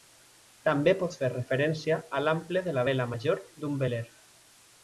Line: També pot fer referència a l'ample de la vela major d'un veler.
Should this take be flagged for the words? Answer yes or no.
no